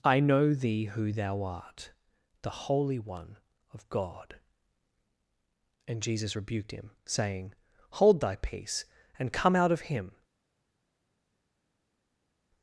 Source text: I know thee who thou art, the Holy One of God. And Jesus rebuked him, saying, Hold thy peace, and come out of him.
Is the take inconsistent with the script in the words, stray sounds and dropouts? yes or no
no